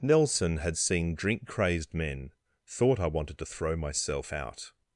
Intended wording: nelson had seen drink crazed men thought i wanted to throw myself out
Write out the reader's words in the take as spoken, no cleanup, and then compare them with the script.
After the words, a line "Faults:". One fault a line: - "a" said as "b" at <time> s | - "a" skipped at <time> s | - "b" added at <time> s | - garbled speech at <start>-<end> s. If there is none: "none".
nelson had seen drink crazed men thought i wanted to throw myself out
Faults:
none